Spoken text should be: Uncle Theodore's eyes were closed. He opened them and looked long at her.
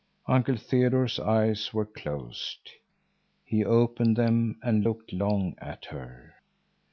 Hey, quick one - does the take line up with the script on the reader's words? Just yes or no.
yes